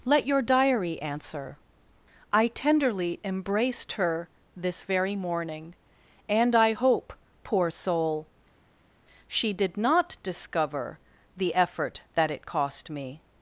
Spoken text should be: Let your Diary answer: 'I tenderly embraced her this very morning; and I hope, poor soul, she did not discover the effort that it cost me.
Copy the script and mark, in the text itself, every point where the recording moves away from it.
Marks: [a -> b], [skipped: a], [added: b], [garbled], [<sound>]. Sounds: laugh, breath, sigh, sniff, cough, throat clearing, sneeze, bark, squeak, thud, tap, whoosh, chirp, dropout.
Let your Diary answer: 'I tenderly embraced her this very morning; and I hope, poor soul, she did not discover the effort that it cost me.